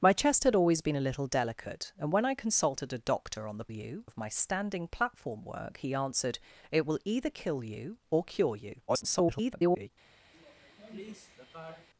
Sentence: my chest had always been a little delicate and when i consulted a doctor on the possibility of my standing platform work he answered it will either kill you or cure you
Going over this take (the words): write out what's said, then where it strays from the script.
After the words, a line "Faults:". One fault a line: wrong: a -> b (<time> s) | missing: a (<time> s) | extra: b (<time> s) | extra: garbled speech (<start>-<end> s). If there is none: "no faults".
my chest had always been a little delicate and when i consulted a doctor on the you of my standing platform work he answered it will either kill you or cure you [garbled]
Faults:
wrong: possibility -> you (3.7 s)
extra: garbled speech (8.9-9.9 s)